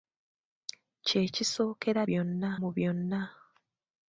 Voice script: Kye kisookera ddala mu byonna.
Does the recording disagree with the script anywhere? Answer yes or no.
yes